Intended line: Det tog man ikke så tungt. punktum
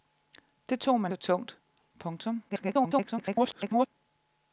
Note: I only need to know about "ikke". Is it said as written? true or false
false